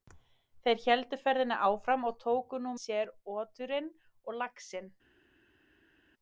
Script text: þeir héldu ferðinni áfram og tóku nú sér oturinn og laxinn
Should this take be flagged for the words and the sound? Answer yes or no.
no